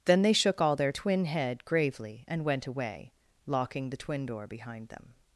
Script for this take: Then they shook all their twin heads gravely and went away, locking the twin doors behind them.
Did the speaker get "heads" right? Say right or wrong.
wrong